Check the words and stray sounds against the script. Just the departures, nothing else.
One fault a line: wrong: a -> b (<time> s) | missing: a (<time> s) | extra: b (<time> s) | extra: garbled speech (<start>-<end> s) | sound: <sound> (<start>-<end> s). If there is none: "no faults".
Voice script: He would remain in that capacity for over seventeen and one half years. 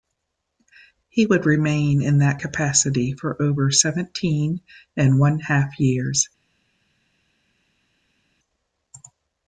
no faults